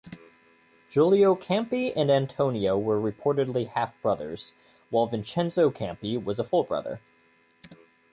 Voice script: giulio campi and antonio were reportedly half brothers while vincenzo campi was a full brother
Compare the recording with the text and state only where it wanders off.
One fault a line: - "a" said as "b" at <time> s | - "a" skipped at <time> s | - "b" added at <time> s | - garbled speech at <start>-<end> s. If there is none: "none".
none